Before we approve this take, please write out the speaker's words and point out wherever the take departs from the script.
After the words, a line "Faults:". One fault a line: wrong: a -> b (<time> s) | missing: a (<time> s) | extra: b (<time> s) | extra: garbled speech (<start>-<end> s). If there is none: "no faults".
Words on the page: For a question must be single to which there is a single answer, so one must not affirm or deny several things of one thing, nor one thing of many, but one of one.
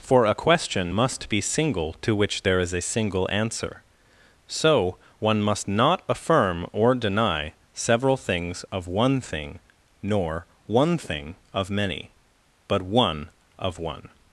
For a question must be single to which there is a single answer, so one must not affirm or deny several things of one thing, nor one thing of many, but one of one.
Faults:
no faults